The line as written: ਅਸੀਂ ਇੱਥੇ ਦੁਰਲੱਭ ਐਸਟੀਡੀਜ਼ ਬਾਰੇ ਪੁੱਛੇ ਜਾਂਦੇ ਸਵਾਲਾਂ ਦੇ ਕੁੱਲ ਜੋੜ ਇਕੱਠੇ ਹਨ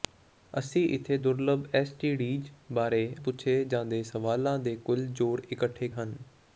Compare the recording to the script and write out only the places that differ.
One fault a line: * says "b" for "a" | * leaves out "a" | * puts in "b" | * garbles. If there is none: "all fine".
all fine